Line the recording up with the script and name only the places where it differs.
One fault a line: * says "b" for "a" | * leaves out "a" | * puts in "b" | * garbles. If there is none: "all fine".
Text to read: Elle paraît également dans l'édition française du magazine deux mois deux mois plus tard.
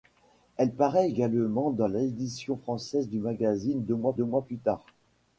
all fine